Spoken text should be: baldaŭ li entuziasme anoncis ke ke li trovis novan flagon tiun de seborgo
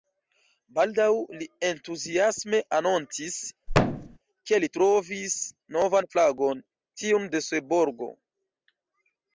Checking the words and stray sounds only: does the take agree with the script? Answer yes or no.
no